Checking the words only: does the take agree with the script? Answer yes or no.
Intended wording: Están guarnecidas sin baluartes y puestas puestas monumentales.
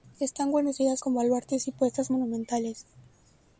no